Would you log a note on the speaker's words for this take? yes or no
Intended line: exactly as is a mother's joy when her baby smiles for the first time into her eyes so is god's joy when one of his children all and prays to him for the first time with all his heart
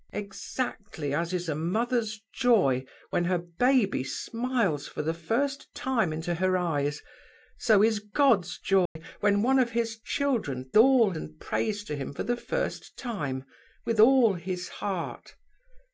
no